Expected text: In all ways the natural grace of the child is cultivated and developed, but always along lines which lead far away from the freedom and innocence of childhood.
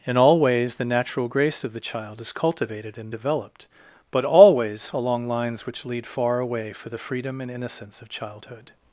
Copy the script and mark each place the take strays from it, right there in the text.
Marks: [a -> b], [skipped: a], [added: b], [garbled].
In all ways the natural grace of the child is cultivated and developed, but always along lines which lead far away [from -> for] the freedom and innocence of childhood.